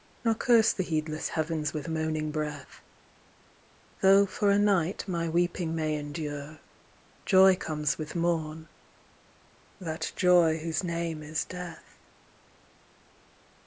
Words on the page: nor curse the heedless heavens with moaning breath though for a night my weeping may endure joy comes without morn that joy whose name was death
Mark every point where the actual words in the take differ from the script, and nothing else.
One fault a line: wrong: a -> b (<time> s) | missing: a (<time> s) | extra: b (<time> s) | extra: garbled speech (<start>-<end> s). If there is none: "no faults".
wrong: without -> with (8.0 s)
wrong: was -> is (11.2 s)